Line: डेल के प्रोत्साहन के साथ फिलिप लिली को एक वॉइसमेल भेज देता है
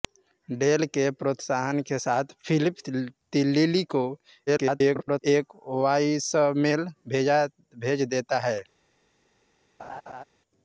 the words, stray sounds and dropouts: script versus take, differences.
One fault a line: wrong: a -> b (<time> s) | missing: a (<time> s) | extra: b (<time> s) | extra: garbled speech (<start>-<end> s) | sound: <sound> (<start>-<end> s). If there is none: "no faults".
extra: garbled speech (4.5-5.2 s)
sound: laugh (9.8-10.2 s)